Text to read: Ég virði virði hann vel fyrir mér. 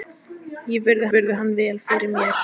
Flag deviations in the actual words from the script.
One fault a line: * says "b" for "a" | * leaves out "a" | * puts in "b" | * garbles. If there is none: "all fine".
all fine